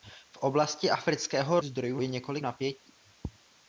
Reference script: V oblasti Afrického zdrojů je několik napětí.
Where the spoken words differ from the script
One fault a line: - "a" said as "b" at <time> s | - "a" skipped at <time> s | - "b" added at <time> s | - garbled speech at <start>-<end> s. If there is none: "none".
none